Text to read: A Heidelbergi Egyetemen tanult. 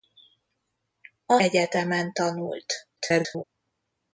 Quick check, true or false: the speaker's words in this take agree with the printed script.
false